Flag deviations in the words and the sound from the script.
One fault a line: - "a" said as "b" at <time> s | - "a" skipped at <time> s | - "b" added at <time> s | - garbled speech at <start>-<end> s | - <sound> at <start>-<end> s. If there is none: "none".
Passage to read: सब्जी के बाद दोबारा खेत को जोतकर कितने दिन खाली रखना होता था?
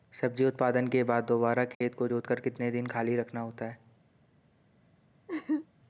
- "उत्पादन" added at 0.5 s
- dropout at 1.7-1.8 s
- "था" said as "है" at 3.6 s
- laugh at 5.3-5.7 s